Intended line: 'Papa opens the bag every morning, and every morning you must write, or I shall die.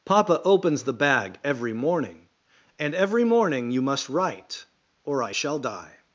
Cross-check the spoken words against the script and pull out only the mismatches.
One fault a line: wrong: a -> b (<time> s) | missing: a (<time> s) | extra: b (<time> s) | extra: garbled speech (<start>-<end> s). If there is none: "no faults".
no faults